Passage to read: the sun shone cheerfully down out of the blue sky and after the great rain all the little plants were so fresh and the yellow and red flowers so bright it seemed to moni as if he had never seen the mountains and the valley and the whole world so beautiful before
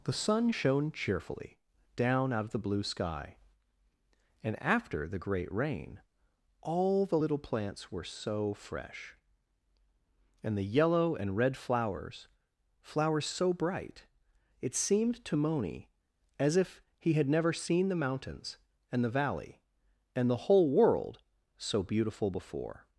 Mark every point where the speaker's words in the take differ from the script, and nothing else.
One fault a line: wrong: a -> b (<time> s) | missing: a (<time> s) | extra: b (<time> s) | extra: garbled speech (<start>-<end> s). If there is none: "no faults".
extra: flowers (12.8 s)